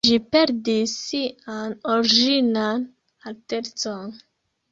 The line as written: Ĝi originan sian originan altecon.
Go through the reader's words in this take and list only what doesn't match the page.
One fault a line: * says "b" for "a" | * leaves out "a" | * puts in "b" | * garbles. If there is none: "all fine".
* says "perdis" for "originan"